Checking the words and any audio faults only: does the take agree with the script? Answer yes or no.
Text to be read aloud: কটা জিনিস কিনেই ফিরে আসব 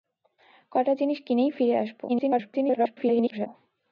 no